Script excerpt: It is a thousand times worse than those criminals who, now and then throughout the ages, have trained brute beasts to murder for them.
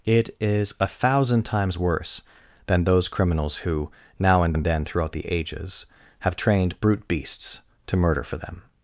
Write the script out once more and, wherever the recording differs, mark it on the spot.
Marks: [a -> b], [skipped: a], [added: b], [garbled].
It is a thousand times worse than those criminals who, now and [added: and] then throughout the ages, have trained brute beasts to murder for them.